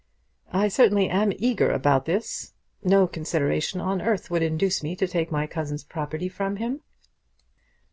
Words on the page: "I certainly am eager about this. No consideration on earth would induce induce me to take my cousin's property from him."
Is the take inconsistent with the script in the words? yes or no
yes